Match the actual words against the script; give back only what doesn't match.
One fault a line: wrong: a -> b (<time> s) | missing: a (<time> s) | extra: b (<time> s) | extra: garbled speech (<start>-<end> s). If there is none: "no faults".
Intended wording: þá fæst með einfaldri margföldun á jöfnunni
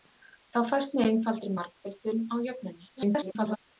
extra: garbled speech (3.0-3.6 s)